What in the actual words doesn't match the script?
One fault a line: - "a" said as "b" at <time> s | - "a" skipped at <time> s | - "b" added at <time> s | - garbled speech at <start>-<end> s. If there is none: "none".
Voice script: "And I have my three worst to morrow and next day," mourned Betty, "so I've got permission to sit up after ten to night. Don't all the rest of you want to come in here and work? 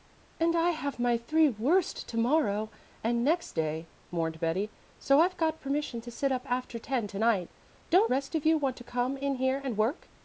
- "all the" skipped at 8.1 s